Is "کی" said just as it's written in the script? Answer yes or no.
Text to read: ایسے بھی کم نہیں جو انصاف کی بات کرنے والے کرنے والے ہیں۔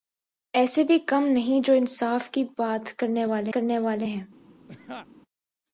yes